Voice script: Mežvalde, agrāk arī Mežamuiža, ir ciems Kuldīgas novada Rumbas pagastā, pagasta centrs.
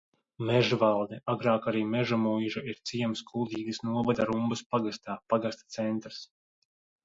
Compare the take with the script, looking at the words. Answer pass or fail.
pass